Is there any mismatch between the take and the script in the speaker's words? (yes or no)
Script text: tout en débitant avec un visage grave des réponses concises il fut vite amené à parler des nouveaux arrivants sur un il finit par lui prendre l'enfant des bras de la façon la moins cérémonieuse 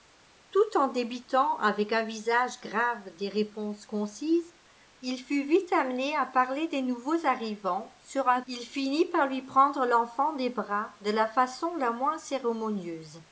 no